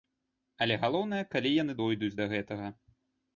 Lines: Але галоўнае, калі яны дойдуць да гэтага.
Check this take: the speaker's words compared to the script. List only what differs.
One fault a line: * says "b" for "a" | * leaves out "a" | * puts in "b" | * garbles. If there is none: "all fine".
all fine